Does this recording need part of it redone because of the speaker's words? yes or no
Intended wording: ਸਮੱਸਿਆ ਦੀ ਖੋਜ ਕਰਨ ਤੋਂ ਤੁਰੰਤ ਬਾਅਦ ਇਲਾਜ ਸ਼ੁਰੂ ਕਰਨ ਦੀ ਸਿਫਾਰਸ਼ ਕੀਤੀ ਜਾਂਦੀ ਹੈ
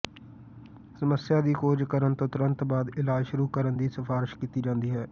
no